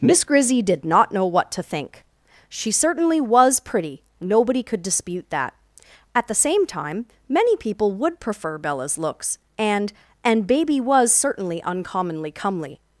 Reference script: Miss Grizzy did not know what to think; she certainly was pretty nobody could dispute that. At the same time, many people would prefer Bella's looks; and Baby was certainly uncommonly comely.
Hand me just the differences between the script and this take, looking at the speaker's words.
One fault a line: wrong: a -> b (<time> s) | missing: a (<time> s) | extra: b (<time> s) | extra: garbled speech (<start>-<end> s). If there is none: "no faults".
extra: and (10.2 s)